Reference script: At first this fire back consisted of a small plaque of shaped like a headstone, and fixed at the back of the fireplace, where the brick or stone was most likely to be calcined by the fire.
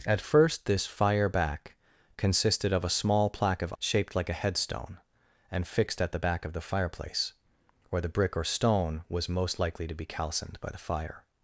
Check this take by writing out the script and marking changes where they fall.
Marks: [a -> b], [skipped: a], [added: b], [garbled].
At first this fire back consisted of a small plaque of shaped like a headstone, and fixed at the back of the fireplace, where the brick or stone was most likely to be calcined by the fire.